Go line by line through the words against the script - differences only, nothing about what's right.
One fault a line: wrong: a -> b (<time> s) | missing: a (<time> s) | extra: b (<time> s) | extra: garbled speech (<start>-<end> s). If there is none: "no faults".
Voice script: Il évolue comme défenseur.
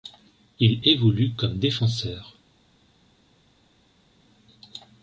no faults